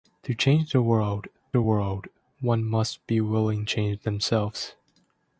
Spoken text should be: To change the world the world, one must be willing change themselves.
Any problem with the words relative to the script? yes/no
no